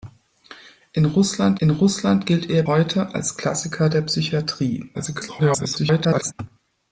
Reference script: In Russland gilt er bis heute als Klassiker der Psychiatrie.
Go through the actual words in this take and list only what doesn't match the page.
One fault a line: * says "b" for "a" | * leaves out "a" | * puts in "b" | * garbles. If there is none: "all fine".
* puts in "in Russland"
* leaves out "bis"
* garbles